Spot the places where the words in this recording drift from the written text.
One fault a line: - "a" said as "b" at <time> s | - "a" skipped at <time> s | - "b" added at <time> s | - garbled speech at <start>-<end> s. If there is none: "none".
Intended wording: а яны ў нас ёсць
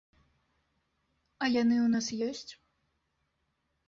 none